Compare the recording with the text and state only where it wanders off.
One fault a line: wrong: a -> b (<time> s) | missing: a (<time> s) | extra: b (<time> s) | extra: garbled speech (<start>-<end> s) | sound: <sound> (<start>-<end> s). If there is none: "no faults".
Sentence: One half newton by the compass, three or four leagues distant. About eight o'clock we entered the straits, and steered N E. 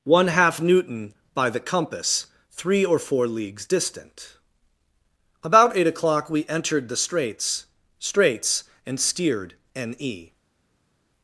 extra: straits (8.0 s)